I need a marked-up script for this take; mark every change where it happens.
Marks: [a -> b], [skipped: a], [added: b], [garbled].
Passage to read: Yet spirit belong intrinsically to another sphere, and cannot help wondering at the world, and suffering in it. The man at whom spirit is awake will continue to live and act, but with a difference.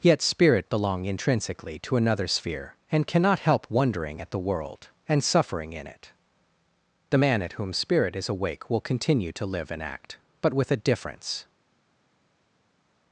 Yet spirit belong intrinsically to another sphere, and cannot help wondering at the world, and suffering in it. The man at whom spirit is awake will continue to live and act, but with a difference.